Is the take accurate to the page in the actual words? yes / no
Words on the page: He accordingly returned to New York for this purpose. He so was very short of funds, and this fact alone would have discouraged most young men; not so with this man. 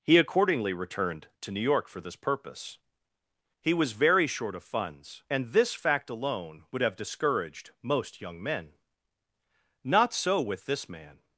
no